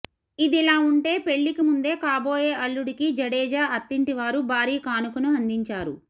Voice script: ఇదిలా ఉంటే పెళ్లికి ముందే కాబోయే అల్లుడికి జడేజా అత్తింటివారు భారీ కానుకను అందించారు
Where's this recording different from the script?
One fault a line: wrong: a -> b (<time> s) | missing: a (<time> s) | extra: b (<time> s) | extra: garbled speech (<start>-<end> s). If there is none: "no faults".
no faults